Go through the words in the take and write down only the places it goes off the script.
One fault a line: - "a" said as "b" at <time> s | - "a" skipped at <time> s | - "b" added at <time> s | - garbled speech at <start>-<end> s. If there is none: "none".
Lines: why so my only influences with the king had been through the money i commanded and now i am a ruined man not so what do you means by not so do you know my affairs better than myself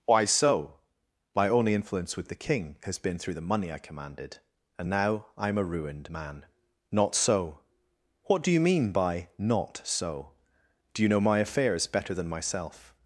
- "influences" said as "influence" at 1.8 s
- "had" said as "has" at 2.8 s
- "means" said as "mean" at 8.6 s